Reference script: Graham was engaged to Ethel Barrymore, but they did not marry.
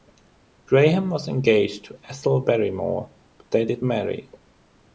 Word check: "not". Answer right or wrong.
wrong